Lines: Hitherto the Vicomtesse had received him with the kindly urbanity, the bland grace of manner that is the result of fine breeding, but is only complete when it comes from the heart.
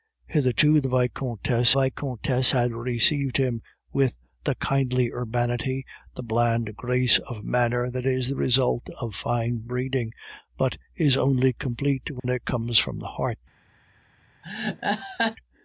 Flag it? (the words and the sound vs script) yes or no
yes